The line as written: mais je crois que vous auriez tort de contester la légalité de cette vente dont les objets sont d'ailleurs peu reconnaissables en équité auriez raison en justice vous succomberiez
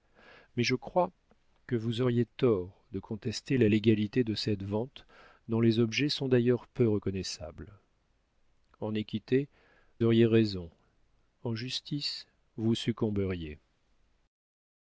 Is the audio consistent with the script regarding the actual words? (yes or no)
yes